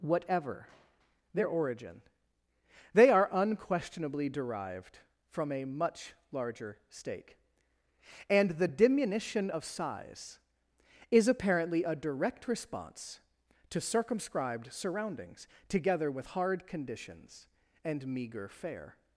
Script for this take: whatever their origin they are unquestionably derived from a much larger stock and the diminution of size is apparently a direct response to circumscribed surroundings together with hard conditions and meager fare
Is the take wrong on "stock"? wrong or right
wrong